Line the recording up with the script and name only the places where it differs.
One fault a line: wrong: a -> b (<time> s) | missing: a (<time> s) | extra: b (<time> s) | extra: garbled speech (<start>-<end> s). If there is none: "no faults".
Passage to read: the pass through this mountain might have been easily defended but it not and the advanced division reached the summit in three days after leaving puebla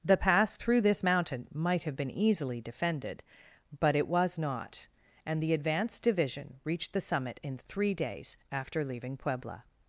extra: was (4.1 s)